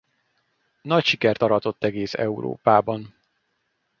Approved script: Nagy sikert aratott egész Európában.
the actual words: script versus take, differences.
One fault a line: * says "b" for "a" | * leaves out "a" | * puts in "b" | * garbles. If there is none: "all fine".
all fine